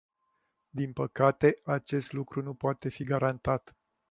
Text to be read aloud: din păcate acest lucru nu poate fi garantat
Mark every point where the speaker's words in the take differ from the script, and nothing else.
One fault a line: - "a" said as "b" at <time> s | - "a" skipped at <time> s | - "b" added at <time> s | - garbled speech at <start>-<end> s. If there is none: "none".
none